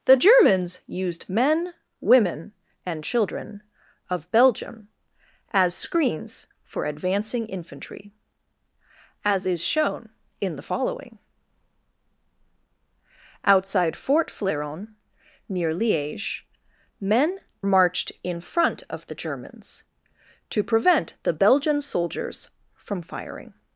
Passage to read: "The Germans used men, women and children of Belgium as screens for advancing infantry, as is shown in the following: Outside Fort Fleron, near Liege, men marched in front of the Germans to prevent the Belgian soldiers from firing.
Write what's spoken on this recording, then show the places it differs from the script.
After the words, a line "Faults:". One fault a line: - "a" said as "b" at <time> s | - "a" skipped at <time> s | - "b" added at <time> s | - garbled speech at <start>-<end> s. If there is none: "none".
"The Germans used men, women and children of Belgium as screens for advancing infantry, as is shown in the following: Outside Fort Fleron, near Liege, men marched in front of the Germans to prevent the Belgian soldiers from firing.
Faults:
none